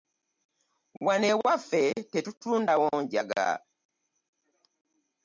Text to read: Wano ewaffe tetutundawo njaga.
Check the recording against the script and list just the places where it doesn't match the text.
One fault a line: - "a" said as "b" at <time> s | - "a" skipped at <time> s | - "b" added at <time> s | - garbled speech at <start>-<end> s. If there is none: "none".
none